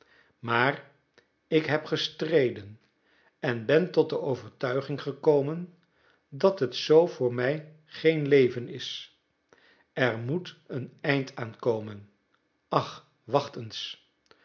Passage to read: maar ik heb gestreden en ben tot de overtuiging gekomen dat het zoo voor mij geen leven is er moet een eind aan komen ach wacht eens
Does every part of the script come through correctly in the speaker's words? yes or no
yes